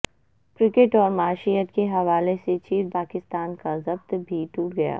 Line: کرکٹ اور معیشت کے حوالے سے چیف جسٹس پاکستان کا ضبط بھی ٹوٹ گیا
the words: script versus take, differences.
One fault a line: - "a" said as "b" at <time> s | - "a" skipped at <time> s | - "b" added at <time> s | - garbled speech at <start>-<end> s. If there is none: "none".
- "جسٹس" skipped at 3.0 s